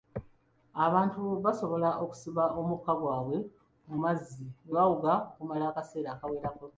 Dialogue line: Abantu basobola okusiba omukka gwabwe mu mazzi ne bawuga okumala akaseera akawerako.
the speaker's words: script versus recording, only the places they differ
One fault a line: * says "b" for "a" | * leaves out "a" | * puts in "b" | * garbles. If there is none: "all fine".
all fine